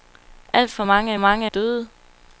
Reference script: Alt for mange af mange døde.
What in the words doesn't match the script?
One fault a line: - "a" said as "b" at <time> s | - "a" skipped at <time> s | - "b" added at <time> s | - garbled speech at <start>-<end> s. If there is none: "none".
none